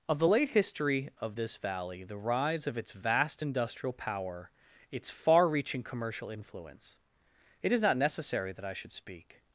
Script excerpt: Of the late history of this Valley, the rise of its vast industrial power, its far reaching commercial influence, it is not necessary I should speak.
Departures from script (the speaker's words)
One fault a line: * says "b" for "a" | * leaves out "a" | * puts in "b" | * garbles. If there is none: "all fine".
* puts in "that"